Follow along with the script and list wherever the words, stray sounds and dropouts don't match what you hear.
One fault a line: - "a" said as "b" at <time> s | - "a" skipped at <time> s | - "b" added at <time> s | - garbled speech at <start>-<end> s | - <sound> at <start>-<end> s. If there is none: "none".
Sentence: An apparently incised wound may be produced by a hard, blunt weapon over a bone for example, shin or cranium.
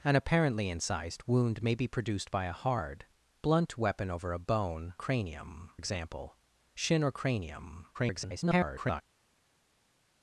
- "for" said as "cranium" at 5.0 s
- garbled speech at 7.9-9.0 s